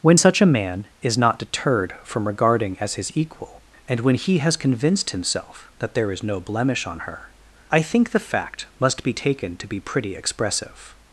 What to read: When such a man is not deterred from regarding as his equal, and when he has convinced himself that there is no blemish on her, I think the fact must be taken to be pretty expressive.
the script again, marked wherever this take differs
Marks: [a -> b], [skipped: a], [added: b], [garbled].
When such a man is not deterred from regarding as his equal, and when he has convinced himself that there is no blemish on her, I think the fact must be taken to be pretty expressive.